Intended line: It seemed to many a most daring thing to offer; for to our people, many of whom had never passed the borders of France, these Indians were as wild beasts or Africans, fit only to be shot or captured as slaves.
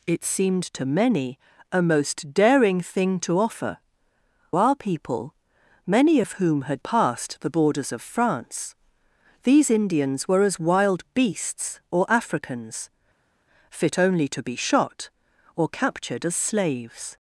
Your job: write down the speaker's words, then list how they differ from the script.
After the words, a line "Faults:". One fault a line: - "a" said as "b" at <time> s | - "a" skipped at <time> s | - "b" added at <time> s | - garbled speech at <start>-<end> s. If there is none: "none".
It seemed to many a most daring thing to offer; our people, many of whom had passed the borders of France, these Indians were as wild beasts or Africans, fit only to be shot or captured as slaves.
Faults:
- "for to" skipped at 3.8 s
- "never" skipped at 6.8 s